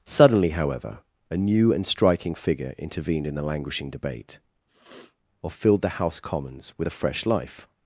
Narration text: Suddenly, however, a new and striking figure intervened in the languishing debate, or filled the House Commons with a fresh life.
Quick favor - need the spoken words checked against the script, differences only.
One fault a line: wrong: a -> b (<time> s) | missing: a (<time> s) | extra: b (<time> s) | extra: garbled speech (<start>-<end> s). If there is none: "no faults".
no faults